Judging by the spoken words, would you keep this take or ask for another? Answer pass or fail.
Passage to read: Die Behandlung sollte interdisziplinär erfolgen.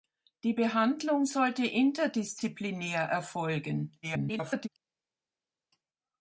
fail